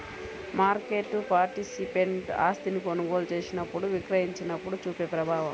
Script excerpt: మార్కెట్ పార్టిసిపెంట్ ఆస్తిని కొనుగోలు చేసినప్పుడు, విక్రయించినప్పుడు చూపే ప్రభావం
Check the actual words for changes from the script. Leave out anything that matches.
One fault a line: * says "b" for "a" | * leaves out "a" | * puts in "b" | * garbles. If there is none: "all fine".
all fine